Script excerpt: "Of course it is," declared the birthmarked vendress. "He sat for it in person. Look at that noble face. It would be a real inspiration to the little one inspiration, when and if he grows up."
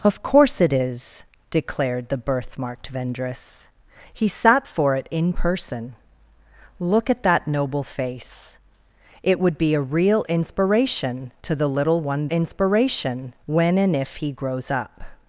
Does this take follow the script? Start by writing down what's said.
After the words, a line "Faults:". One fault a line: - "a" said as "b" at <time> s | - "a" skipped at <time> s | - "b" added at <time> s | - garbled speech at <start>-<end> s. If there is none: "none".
"Of course it is," declared the birthmarked vendress. "He sat for it in person. Look at that noble face. It would be a real inspiration to the little one inspiration, when and if he grows up."
Faults:
none